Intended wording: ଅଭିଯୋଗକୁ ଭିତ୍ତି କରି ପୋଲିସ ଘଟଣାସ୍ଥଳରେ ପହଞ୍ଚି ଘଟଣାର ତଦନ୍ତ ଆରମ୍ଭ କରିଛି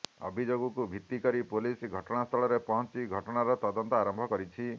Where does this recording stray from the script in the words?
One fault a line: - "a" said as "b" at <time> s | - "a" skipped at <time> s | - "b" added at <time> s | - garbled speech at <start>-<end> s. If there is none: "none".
none